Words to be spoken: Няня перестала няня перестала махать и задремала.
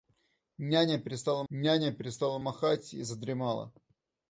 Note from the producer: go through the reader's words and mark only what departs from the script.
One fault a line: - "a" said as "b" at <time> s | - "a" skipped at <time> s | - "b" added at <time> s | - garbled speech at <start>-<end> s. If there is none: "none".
none